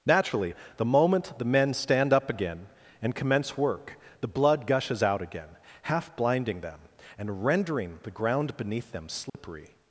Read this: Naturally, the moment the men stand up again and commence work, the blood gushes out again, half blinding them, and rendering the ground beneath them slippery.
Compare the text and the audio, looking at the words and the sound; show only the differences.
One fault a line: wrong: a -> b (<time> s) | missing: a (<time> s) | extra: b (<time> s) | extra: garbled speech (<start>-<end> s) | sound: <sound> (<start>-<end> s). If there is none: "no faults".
sound: dropout (9.3-9.3 s)